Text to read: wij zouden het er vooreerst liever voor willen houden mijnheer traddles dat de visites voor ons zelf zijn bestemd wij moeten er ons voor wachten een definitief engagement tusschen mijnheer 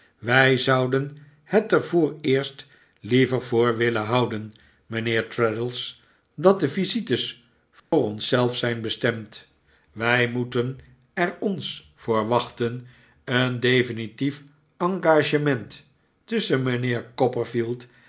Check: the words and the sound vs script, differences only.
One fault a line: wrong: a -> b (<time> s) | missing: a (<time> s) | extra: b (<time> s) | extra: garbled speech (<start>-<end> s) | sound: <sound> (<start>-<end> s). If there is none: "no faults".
sound: dropout (7.8-7.9 s)